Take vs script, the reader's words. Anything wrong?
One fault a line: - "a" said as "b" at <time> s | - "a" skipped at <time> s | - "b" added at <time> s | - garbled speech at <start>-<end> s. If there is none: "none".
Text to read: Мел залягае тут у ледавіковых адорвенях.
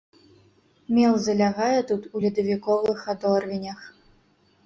none